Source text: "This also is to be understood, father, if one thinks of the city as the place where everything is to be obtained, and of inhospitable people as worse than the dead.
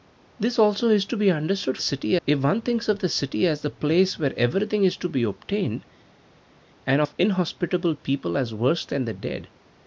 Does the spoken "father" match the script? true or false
false